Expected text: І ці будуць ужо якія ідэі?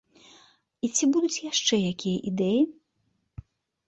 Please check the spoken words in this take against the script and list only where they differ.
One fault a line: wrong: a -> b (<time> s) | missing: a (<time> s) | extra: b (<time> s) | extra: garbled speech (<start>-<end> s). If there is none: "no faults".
wrong: ужо -> яшчэ (1.5 s)